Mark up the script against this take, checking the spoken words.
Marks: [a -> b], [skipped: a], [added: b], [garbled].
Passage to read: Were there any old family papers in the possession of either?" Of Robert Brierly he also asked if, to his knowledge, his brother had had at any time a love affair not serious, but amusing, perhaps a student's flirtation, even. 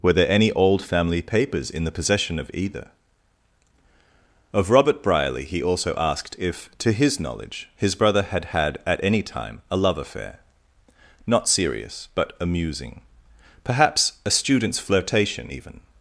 Were there any old family papers in the possession of either?" Of Robert Brierly he also asked if, to his knowledge, his brother had had at any time a love affair not serious, but amusing, perhaps a student's flirtation, even.